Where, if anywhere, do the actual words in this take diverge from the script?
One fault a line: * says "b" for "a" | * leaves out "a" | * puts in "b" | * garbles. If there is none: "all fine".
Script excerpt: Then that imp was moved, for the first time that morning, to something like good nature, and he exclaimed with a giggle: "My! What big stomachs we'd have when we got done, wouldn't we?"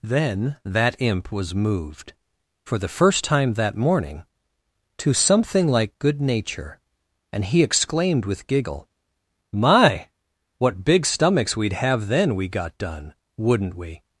* leaves out "a"
* says "then" for "when"